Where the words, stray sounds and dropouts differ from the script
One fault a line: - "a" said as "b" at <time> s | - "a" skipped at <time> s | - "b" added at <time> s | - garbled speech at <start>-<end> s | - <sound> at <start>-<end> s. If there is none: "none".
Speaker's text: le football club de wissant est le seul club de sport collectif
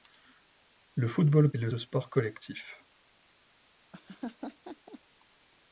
- "club de wissant" skipped at 1.5 s
- "seul club" skipped at 1.7 s
- laugh at 3.9-5.0 s